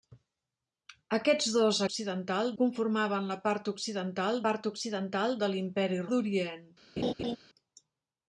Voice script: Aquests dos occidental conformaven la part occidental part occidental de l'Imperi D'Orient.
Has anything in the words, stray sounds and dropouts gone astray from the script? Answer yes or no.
yes